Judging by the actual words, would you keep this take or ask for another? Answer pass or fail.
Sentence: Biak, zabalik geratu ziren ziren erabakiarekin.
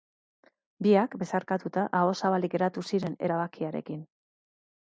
fail